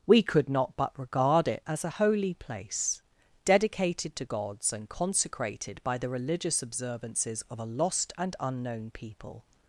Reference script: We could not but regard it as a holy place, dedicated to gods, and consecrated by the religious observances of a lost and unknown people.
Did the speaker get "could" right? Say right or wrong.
right